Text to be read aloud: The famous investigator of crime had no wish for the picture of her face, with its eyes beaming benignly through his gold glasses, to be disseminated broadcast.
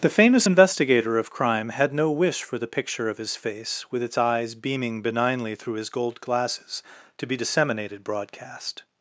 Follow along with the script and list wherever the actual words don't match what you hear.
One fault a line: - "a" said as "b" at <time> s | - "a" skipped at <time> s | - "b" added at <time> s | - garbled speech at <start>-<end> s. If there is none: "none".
- "her" said as "his" at 3.2 s